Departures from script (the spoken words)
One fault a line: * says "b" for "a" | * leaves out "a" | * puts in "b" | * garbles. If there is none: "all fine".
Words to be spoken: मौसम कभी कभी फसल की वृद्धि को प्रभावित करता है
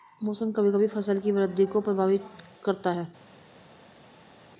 all fine